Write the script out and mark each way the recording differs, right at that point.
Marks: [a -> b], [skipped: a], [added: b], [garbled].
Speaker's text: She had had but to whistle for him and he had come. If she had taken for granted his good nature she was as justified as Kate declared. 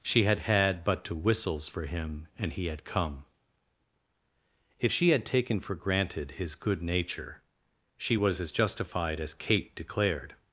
She had had but to [whistle -> whistles] for him and he had come. If she had taken for granted his good nature she was as justified as Kate declared.